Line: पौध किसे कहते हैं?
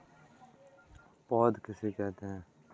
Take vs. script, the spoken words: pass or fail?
pass